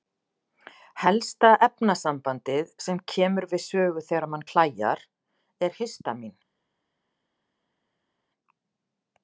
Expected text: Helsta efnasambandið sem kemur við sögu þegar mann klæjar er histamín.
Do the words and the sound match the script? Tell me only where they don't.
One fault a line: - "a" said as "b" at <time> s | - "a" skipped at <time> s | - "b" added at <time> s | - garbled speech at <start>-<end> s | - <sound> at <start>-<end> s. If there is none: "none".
none